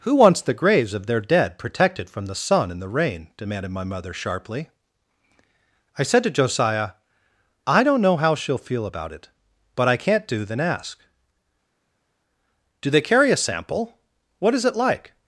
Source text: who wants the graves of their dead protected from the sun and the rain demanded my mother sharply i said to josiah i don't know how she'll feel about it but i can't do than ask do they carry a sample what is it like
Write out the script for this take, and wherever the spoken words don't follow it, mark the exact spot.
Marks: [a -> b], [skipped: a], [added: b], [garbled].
who wants the graves of their dead protected from the sun and the rain demanded my mother sharply i said to josiah i don't know how she'll feel about it but i can't do than ask do they carry a sample what is it like